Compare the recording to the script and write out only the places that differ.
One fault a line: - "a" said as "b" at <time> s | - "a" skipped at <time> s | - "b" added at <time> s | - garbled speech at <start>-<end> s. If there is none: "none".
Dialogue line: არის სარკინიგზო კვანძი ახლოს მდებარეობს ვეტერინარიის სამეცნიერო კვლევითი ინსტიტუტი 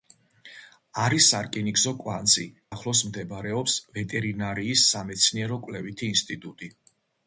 none